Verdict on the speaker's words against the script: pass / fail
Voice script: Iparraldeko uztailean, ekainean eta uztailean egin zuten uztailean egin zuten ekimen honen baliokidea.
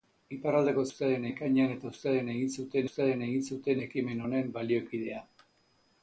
pass